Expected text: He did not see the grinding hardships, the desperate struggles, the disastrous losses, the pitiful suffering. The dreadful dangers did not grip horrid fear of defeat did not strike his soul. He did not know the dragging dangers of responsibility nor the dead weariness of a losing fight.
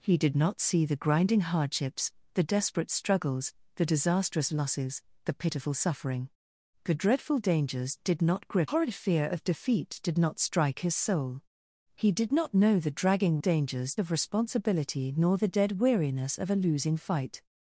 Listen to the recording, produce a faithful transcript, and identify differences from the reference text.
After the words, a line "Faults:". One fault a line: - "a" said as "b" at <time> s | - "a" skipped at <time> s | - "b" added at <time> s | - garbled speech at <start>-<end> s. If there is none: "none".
He did not see the grinding hardships, the desperate struggles, the disastrous losses, the pitiful suffering. The dreadful dangers did not grip horrid fear of defeat did not strike his soul. He did not know the dragging dangers of responsibility nor the dead weariness of a losing fight.
Faults:
none